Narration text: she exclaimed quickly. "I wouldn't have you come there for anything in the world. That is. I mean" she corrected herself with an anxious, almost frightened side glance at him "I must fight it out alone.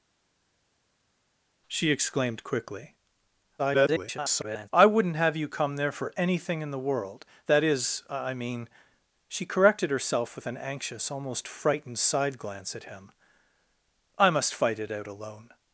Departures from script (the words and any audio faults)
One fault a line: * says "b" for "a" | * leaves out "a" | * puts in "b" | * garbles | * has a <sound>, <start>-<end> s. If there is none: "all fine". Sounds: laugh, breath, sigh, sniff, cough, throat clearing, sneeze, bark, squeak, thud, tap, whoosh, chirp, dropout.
* garbles